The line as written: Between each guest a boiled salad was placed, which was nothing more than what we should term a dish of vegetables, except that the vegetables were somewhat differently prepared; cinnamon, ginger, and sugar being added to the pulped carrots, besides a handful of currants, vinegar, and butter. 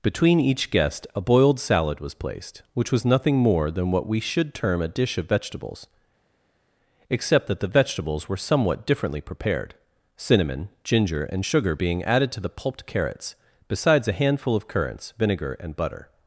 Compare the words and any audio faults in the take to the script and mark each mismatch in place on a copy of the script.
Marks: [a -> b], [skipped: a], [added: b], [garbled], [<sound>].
Between each guest a boiled salad was placed, which was nothing more than what we should term a dish of vegetables, except that the vegetables were somewhat differently prepared; cinnamon, ginger, and sugar being added to the pulped carrots, besides a handful of currants, vinegar, and butter.